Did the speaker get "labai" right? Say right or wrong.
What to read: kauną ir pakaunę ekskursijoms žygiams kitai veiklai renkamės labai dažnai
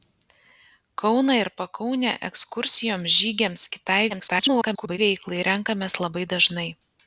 right